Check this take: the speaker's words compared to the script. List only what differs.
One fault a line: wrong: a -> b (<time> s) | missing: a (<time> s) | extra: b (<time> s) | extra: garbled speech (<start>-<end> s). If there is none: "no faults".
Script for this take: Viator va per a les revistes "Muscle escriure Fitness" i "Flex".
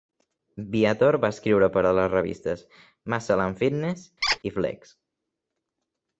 extra: escriure (1.4 s)
wrong: escriure -> and (3.5 s)